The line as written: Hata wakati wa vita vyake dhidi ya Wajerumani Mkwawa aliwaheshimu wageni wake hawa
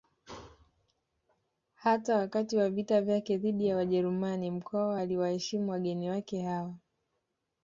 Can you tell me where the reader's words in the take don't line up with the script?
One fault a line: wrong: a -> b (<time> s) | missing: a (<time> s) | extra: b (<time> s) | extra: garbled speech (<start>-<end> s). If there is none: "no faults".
no faults